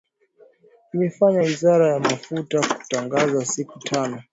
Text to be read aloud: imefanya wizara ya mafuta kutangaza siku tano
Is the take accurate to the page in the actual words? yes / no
yes